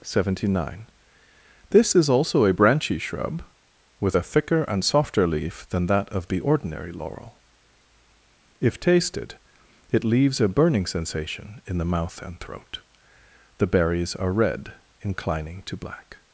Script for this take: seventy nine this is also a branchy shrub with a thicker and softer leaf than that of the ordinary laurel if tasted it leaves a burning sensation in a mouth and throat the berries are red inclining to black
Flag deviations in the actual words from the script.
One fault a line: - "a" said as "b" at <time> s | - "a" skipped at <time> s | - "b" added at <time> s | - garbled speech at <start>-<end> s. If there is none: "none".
- "a" said as "the" at 11.8 s